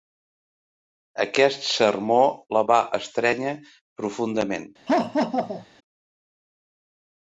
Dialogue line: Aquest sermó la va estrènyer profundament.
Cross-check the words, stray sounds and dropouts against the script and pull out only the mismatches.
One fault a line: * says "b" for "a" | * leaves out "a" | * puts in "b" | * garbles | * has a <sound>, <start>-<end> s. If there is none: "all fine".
* has a laugh, 4.9-5.7 s